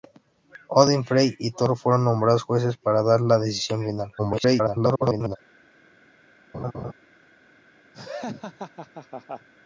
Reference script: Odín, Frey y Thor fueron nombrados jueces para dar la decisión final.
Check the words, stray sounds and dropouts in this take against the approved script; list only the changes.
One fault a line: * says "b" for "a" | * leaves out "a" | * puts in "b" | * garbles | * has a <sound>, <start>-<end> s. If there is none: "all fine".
* garbles
* has a laugh, 6.5-6.9 s
* has a laugh, 7.9-9.5 s